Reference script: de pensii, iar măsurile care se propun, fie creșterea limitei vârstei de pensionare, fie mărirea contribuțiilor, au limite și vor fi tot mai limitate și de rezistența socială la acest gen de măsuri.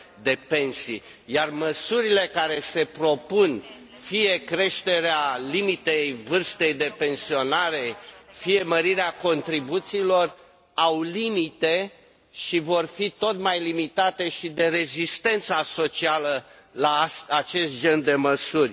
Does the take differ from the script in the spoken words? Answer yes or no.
no